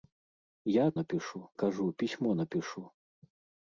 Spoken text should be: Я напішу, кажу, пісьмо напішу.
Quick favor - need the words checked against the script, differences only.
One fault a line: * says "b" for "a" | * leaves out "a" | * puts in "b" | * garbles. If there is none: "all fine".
all fine